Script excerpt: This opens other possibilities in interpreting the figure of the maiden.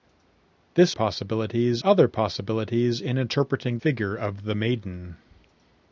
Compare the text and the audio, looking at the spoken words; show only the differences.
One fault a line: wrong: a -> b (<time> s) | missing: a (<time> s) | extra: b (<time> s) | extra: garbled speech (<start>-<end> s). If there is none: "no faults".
wrong: opens -> possibilities (0.9 s)
missing: the (3.8 s)